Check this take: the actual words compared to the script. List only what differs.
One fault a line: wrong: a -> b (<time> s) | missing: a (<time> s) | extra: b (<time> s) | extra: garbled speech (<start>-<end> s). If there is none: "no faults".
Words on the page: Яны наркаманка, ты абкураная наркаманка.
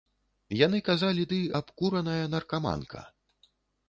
wrong: наркаманка -> казалі (0.9 s)